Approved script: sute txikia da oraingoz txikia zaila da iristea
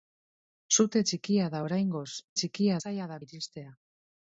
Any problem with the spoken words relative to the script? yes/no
no